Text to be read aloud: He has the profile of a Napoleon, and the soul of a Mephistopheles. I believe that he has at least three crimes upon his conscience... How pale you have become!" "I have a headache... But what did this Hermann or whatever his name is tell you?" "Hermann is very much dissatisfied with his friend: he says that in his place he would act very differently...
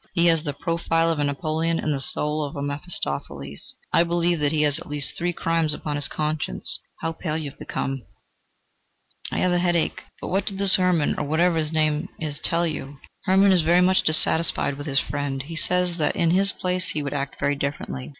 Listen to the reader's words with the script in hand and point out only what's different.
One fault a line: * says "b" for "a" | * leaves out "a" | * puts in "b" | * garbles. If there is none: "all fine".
all fine